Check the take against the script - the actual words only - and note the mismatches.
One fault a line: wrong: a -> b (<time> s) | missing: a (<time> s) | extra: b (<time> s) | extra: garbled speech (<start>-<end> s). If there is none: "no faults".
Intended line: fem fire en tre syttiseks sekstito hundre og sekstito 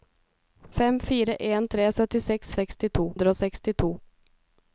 no faults